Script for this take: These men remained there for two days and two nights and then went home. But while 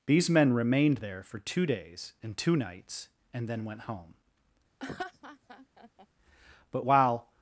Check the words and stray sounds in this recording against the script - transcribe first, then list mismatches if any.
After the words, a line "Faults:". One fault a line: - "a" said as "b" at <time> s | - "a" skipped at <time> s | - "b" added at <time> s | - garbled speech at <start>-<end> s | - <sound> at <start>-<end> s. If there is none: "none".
These men remained there for two days and two nights and then went home. But while
Faults:
- laugh at 4.8-6.1 s